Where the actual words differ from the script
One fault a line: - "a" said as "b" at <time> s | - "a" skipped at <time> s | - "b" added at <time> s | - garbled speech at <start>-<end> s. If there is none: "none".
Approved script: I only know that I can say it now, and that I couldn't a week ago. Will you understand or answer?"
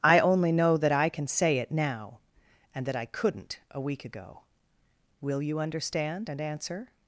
- "or" said as "and" at 6.3 s